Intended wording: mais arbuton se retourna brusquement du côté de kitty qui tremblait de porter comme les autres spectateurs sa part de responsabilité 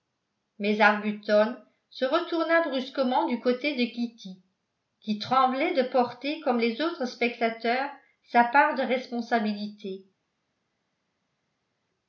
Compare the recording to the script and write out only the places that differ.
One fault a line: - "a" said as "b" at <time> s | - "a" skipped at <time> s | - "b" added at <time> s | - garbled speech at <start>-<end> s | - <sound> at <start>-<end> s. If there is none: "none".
none